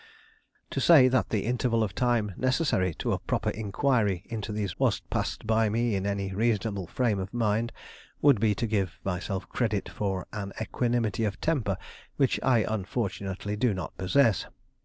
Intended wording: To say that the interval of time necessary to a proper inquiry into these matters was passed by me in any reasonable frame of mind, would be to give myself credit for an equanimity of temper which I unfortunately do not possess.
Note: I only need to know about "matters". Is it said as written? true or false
false